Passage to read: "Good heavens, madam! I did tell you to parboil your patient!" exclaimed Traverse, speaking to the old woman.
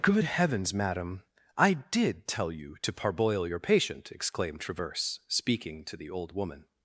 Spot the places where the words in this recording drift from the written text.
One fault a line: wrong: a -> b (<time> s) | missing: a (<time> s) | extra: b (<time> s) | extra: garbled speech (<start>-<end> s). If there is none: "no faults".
no faults